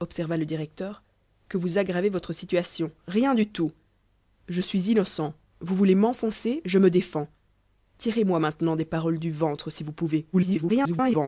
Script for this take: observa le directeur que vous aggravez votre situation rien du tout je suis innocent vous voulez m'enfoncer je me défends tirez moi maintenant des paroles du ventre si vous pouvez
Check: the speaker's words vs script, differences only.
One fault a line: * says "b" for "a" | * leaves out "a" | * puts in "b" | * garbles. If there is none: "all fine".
* garbles